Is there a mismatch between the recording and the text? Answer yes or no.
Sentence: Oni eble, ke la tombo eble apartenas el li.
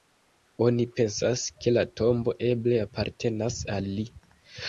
yes